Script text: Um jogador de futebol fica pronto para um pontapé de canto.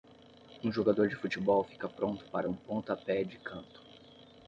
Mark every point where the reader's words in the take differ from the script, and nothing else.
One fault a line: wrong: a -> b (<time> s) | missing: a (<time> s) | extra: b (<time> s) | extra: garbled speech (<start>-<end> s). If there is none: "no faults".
no faults